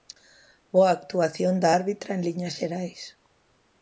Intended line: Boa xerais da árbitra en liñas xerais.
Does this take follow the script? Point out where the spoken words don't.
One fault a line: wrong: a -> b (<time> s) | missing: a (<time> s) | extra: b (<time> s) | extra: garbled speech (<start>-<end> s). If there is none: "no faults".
wrong: xerais -> actuación (1.0 s)